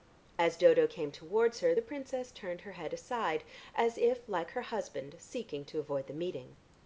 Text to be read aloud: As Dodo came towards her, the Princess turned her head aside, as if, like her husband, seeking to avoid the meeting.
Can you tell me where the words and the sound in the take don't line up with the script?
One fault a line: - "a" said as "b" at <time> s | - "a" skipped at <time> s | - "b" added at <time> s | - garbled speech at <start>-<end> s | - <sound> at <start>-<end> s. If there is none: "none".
none